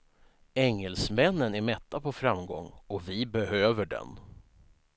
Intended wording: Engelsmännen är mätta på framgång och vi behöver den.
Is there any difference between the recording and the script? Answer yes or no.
no